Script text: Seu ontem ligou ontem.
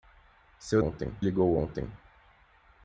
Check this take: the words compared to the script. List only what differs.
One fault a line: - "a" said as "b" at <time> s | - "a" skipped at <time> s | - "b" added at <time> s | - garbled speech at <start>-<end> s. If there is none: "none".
none